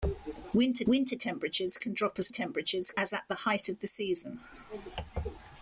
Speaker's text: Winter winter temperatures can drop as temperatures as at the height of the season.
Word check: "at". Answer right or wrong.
right